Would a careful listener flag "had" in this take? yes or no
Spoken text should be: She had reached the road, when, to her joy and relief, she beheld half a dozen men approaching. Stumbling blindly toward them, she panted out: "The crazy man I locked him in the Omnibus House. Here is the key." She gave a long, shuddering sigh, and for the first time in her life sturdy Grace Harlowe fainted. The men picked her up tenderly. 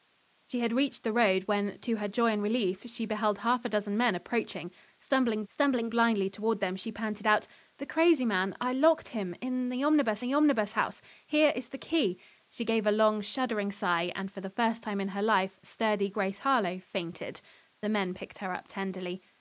no